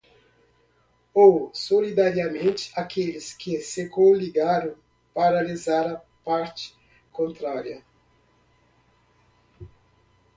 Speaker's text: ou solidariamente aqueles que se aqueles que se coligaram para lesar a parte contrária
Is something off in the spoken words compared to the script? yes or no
yes